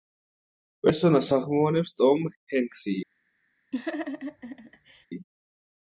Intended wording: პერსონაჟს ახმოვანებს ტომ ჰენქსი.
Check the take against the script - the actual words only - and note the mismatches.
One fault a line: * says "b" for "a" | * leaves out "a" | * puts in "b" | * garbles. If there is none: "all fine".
all fine